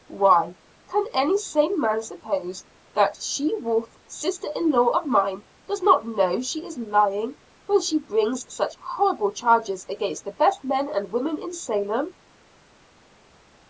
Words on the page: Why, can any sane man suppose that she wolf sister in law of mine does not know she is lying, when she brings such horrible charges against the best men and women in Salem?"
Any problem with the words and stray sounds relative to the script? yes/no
no